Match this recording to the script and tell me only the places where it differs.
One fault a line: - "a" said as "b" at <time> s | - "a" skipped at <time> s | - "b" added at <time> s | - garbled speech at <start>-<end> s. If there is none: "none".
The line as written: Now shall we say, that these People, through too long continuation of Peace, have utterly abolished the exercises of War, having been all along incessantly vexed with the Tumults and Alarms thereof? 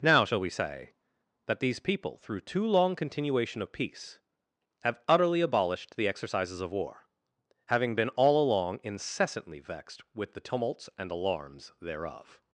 none